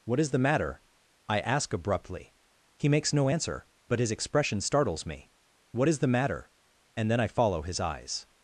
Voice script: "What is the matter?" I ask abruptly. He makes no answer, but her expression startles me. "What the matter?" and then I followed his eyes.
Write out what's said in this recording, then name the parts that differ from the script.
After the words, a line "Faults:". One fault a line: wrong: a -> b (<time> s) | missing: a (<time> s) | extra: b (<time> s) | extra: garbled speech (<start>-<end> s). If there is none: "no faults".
"What is the matter?" I ask abruptly. He makes no answer, but his expression startles me. "What is the matter?" and then I follow his eyes.
Faults:
wrong: her -> his (4.0 s)
extra: is (5.9 s)
wrong: followed -> follow (7.3 s)